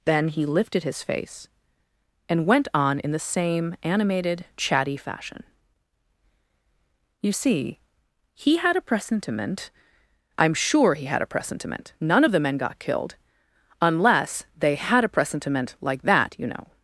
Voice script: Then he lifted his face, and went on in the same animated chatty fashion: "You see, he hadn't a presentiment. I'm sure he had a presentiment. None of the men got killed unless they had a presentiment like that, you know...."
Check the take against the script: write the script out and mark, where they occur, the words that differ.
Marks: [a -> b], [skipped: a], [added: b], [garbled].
Then he lifted his face, and went on in the same animated chatty fashion: "You see, he [hadn't -> had] a presentiment. I'm sure he had a presentiment. None of the men got killed unless they had a presentiment like that, you know...."